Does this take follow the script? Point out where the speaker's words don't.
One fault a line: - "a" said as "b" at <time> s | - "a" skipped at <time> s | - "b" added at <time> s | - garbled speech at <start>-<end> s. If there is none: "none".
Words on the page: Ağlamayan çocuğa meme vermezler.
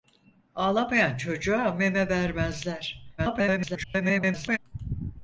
- garbled speech at 3.2-4.6 s